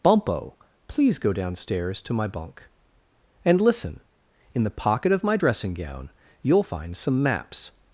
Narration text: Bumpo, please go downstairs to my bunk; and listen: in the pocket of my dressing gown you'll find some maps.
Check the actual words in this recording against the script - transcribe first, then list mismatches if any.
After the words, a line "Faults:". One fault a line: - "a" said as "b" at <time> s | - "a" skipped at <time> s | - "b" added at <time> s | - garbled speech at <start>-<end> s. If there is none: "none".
Bumpo, please go downstairs to my bunk; and listen: in the pocket of my dressing gown you'll find some maps.
Faults:
none